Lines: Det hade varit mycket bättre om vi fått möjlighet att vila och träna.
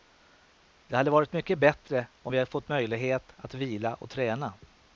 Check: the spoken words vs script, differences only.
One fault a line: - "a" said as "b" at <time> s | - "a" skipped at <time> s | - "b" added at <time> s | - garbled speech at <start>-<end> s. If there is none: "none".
none